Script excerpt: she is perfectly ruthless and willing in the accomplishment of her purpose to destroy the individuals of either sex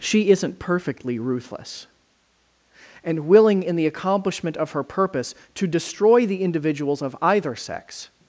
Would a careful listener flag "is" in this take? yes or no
yes